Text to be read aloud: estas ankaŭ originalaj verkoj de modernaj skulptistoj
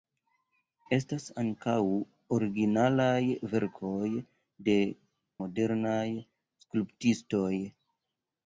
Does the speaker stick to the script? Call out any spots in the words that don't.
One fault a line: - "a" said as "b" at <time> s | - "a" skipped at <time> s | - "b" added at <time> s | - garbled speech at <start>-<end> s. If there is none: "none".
none